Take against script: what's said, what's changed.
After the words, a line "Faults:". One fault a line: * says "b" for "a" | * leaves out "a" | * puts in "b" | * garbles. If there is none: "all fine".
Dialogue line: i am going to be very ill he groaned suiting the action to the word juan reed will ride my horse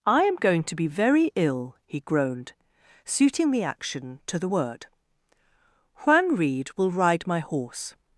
i am going to be very ill he groaned suiting the action to the word juan reed will ride my horse
Faults:
all fine